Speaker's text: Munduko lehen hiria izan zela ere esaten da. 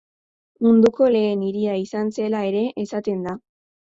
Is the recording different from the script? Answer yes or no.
no